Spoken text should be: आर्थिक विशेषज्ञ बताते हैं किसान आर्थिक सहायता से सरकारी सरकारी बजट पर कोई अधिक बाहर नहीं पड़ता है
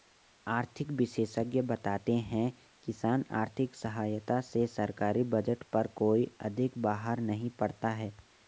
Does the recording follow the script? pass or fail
fail